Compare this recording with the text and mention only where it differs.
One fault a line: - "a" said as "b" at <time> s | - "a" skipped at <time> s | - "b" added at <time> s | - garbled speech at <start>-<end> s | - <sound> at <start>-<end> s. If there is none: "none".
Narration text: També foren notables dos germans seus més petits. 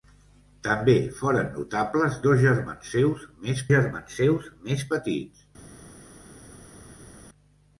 - "germans seus més" added at 3.7 s